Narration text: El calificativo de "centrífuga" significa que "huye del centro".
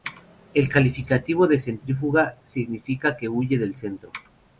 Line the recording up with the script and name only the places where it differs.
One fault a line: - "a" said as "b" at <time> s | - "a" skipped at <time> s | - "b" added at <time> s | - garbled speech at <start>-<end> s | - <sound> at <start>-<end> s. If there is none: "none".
none